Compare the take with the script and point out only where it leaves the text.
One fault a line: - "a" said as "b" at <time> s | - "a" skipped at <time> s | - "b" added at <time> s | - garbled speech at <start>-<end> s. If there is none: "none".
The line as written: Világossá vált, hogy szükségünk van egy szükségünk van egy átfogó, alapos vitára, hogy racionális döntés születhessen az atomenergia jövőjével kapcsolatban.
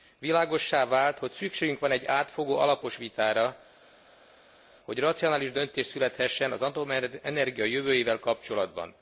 - "szükségünk van egy" skipped at 2.0 s